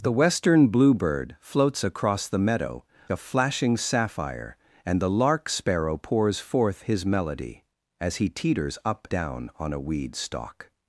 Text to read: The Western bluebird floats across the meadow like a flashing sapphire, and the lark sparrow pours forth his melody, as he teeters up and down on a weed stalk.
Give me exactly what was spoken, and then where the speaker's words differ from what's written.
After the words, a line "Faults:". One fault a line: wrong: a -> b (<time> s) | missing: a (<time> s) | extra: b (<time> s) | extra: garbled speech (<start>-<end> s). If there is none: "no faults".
The Western bluebird floats across the meadow a flashing sapphire, and the lark sparrow pours forth his melody, as he teeters up down on a weed stalk.
Faults:
missing: like (2.9 s)
missing: and (9.1 s)